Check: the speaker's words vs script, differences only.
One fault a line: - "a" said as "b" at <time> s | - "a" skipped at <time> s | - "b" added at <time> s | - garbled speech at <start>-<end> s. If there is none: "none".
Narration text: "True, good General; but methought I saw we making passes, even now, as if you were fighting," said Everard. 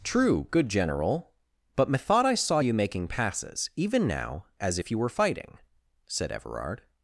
- "we" said as "you" at 2.6 s